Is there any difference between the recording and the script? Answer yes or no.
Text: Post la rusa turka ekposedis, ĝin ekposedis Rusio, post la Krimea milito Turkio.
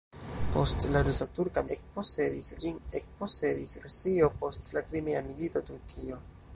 no